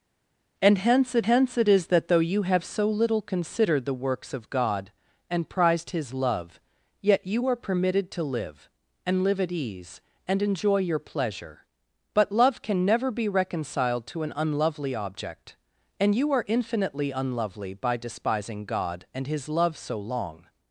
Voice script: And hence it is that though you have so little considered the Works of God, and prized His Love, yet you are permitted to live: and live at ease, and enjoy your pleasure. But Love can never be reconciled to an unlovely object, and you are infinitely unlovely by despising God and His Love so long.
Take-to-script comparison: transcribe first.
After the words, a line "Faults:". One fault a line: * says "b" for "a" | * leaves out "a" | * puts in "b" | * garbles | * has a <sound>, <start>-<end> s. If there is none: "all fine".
And hence it hence it is that though you have so little considered the Works of God, and prized His Love, yet you are permitted to live: and live at ease, and enjoy your pleasure. But Love can never be reconciled to an unlovely object, and you are infinitely unlovely by despising God and His Love so long.
Faults:
* puts in "hence it"